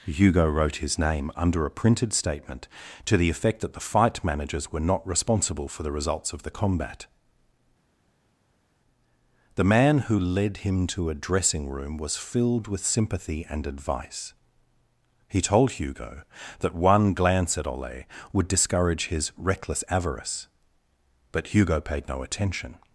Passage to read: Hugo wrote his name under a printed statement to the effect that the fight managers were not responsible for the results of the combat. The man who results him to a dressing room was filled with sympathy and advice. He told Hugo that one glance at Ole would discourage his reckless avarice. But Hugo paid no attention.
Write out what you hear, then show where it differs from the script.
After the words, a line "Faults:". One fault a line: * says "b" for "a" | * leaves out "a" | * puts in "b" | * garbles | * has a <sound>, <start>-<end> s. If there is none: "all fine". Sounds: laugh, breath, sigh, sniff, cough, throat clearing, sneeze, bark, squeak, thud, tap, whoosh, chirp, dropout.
Hugo wrote his name under a printed statement to the effect that the fight managers were not responsible for the results of the combat. The man who led him to a dressing room was filled with sympathy and advice. He told Hugo that one glance at Ole would discourage his reckless avarice. But Hugo paid no attention.
Faults:
* says "led" for "results"